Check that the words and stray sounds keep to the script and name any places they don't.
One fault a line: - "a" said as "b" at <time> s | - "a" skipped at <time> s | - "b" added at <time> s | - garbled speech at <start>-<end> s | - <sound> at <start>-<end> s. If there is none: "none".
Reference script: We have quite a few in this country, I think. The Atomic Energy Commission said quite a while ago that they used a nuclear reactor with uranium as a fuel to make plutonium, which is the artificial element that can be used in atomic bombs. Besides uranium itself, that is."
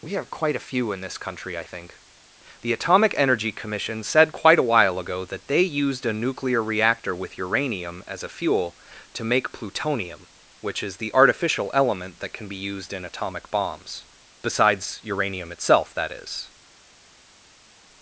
none